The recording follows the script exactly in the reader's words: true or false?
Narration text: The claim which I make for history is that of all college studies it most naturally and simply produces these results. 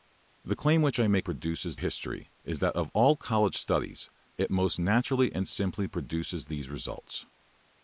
false